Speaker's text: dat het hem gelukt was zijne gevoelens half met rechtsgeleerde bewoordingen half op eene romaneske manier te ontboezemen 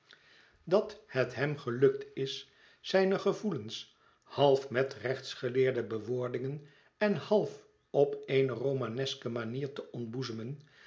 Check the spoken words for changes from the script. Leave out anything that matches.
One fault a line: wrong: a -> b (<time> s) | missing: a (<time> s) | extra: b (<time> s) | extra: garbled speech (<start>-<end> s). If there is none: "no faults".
wrong: was -> is (2.1 s)
extra: en (7.0 s)